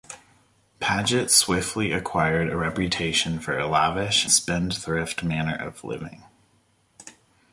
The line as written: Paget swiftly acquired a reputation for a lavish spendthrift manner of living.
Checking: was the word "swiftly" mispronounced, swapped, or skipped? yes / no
no